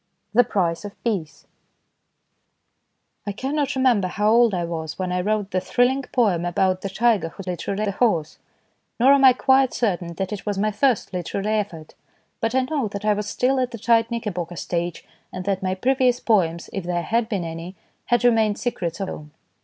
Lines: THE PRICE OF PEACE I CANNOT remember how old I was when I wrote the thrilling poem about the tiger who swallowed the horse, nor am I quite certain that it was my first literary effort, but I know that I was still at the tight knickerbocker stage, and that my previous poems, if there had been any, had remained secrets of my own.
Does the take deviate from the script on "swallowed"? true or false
true